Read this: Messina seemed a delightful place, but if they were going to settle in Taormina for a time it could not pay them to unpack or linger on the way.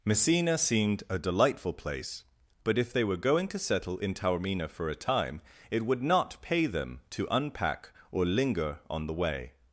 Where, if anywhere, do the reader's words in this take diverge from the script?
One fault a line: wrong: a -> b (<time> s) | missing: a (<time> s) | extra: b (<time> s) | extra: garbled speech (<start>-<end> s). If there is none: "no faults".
wrong: could -> would (5.8 s)